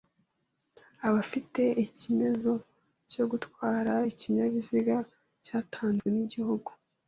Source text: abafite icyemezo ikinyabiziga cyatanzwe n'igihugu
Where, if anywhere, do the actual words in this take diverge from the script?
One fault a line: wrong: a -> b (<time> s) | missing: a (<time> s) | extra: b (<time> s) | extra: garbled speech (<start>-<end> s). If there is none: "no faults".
extra: cyo gutwara (3.1 s)